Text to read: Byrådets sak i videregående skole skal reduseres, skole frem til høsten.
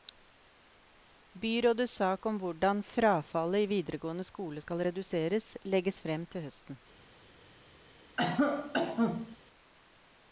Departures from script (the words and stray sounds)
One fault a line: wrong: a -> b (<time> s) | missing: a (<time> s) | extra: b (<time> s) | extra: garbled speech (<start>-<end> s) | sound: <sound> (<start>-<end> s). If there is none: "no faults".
extra: om hvordan frafallet (2.2 s)
wrong: skole -> legges (5.6 s)
sound: cough (8.2-9.4 s)